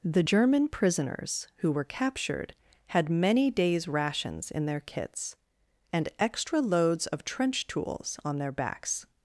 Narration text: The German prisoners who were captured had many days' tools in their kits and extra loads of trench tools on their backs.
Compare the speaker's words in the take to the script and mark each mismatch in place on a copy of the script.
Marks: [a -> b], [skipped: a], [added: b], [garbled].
The German prisoners who were captured had many days' [tools -> rations] in their kits and extra loads of trench tools on their backs.